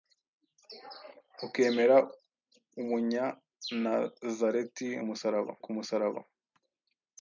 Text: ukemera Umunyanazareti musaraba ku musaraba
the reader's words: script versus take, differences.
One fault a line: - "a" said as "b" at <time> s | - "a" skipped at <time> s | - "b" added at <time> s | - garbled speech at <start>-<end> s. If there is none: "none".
none